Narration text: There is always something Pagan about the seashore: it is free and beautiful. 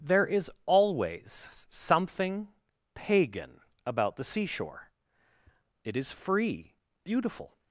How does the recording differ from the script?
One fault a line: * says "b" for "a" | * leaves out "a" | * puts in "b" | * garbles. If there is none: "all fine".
* leaves out "and"